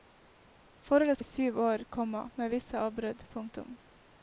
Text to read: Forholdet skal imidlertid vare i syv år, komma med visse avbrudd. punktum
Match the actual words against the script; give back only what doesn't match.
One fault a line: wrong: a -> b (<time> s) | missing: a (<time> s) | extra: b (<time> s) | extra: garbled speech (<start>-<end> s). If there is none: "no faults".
missing: skal imidlertid vare (1.2 s)